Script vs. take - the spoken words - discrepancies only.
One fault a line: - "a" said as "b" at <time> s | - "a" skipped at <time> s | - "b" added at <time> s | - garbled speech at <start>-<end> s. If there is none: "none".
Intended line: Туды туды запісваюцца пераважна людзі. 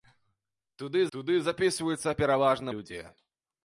none